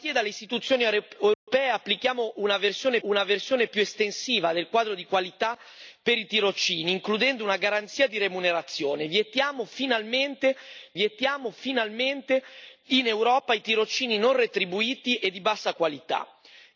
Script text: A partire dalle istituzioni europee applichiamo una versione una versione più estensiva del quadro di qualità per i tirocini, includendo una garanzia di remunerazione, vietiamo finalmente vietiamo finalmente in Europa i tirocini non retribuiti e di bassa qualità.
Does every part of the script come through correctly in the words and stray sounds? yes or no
no